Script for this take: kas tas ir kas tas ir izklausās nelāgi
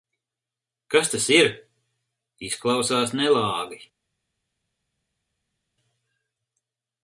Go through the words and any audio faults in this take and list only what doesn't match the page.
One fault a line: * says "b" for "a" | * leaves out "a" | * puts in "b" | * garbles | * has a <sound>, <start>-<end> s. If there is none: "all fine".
* leaves out "kas tas ir"